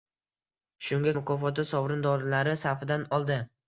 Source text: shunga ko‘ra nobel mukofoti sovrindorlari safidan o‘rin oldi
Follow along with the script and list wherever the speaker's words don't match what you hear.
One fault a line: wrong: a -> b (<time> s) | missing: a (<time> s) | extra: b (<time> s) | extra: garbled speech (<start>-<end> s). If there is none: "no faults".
missing: ko‘ra nobel (1.1 s)
missing: o‘rin (3.1 s)